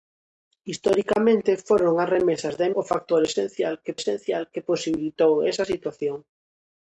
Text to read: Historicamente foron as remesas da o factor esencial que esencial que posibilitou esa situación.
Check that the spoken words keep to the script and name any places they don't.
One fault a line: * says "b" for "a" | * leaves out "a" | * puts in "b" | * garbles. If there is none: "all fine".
all fine